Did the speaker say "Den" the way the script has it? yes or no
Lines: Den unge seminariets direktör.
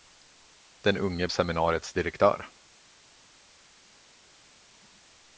yes